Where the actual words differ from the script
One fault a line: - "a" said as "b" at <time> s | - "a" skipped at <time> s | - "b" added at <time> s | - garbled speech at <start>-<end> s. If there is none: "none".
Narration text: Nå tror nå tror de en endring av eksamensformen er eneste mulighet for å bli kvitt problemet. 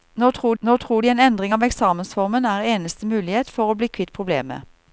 none